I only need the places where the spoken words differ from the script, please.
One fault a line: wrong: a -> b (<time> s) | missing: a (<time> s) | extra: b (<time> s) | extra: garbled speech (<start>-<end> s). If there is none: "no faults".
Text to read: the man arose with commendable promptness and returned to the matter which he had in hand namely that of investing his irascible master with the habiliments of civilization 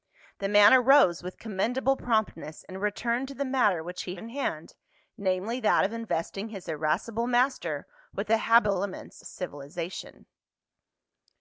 missing: had (4.1 s)
missing: of (9.2 s)